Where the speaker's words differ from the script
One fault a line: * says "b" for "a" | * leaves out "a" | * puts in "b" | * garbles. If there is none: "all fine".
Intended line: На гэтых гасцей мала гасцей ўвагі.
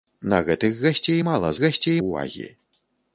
all fine